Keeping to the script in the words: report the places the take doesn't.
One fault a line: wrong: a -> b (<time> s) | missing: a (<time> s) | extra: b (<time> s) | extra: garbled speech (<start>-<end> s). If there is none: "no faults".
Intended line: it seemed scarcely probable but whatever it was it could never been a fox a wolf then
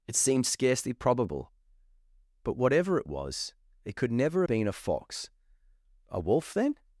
no faults